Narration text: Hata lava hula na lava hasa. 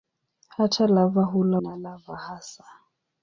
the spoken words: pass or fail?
pass